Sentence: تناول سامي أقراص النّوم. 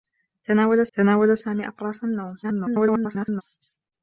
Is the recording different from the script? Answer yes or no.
yes